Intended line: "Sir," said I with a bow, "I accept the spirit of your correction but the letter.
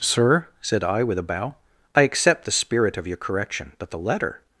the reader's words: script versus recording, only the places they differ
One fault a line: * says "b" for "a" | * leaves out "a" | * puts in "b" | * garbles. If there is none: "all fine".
all fine